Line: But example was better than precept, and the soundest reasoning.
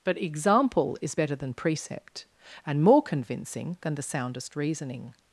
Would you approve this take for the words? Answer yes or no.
no